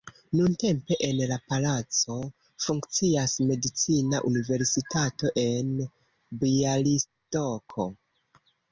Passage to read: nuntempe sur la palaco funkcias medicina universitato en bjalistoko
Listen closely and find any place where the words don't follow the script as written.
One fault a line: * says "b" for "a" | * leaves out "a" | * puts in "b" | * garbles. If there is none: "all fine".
* says "en" for "sur"